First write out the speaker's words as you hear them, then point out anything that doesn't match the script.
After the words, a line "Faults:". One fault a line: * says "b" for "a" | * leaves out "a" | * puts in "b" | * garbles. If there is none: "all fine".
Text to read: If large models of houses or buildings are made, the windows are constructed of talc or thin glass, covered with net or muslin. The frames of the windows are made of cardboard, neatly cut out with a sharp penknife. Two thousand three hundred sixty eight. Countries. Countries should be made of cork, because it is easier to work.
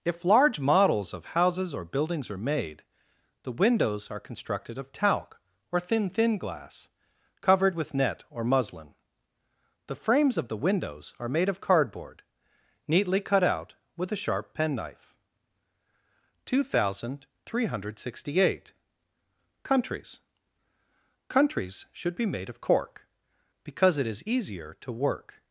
If large models of houses or buildings are made, the windows are constructed of talc or thin thin glass, covered with net or muslin. The frames of the windows are made of cardboard, neatly cut out with a sharp penknife. Two thousand three hundred sixty eight. Countries. Countries should be made of cork, because it is easier to work.
Faults:
* puts in "thin"